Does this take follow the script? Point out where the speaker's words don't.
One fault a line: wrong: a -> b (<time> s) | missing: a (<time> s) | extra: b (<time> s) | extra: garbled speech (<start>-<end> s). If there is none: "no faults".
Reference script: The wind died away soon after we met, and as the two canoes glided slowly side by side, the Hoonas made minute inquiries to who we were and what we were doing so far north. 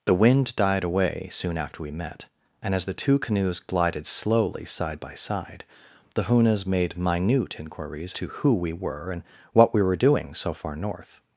no faults